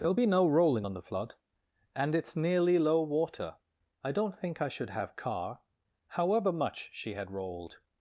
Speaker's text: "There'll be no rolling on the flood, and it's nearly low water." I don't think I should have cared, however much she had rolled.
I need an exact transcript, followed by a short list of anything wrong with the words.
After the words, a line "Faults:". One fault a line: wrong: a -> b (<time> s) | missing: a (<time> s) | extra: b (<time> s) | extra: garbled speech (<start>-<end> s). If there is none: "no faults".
"There'll be no rolling on the flood, and it's nearly low water." I don't think I should have car, however much she had rolled.
Faults:
wrong: cared -> car (5.2 s)